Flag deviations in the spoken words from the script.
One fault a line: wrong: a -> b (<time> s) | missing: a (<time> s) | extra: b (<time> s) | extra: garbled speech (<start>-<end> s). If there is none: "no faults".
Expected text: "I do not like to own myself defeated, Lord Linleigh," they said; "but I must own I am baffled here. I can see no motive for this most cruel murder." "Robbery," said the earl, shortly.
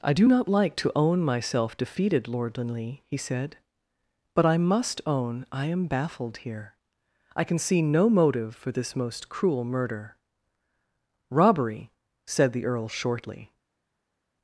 wrong: they -> he (3.1 s)